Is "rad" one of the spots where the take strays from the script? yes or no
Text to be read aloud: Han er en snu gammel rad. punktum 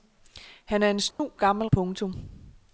yes